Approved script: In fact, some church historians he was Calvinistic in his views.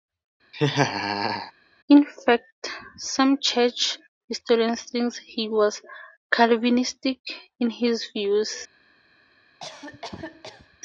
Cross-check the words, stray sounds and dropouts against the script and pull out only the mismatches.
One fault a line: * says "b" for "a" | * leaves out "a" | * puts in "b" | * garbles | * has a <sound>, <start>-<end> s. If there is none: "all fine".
* has a laugh, 0.5-1.5 s
* puts in "think"
* has a cough, 9.6-10.8 s